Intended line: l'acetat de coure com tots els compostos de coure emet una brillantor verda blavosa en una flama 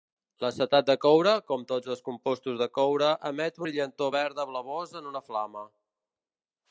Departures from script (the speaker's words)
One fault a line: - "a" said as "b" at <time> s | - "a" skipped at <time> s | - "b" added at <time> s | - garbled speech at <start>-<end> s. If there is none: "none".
- "una" skipped at 3.6 s